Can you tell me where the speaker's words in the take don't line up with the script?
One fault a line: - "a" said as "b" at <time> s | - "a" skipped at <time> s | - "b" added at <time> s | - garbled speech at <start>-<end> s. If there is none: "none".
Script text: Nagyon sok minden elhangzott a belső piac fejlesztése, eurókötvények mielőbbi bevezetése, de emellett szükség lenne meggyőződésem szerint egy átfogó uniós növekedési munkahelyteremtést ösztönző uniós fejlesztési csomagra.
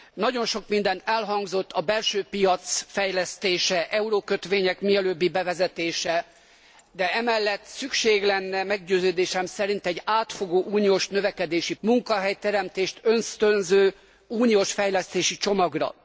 none